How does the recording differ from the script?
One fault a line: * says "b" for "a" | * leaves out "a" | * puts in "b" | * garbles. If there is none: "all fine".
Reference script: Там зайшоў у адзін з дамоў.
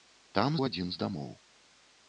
* leaves out "зайшоў"